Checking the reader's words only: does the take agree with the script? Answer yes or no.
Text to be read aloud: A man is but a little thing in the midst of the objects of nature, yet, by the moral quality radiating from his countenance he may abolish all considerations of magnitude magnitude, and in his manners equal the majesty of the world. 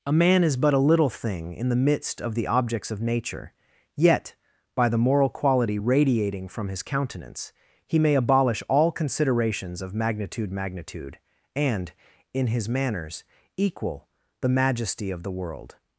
yes